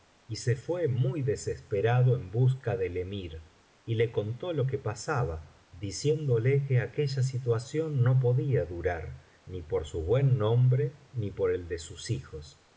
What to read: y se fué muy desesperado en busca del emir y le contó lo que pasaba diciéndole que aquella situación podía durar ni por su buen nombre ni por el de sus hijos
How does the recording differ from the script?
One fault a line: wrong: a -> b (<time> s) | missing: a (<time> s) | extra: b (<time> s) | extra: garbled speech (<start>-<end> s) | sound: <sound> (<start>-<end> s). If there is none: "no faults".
extra: no (8.0 s)